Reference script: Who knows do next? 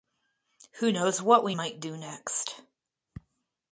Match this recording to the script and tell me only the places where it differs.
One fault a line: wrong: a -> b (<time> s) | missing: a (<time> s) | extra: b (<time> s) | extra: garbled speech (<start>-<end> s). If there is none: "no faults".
extra: what we might (1.2 s)